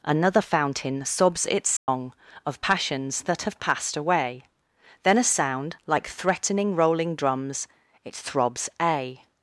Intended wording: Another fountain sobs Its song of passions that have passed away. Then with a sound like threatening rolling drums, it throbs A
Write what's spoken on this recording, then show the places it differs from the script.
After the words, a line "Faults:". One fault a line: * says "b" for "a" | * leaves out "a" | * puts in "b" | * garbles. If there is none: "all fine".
Another fountain sobs Its song of passions that have passed away. Then a sound like threatening rolling drums, it throbs A
Faults:
* leaves out "with"